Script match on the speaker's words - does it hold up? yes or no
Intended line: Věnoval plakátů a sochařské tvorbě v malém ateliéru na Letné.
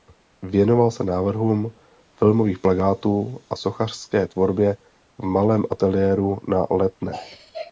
no